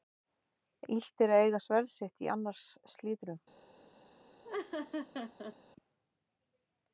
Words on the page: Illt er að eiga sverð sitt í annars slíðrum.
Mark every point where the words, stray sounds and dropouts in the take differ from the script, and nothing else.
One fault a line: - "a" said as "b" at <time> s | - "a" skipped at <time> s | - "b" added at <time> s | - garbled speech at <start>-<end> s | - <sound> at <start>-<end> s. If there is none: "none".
- laugh at 4.4-5.6 s